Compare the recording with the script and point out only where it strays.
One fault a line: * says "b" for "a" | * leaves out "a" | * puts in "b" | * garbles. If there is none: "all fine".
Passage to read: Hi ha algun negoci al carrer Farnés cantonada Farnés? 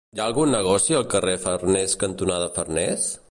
all fine